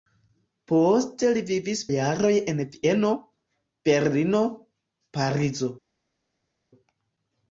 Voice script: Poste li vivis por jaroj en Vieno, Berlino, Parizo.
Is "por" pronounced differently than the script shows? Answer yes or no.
yes